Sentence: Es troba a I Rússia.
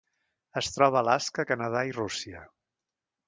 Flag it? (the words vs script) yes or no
yes